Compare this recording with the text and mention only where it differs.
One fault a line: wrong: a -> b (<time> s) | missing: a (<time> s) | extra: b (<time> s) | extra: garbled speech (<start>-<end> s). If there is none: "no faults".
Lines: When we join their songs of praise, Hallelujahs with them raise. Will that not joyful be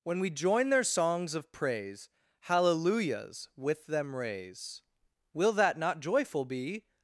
no faults